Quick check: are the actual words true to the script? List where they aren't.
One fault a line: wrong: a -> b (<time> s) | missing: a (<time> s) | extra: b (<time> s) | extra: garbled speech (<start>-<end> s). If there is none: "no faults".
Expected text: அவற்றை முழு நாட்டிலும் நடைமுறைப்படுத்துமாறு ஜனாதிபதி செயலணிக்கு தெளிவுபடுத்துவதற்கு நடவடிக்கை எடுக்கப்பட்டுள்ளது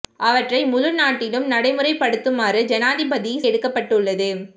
missing: செயலணிக்கு தெளிவுபடுத்துவதற்கு நடவடிக்கை (3.3 s)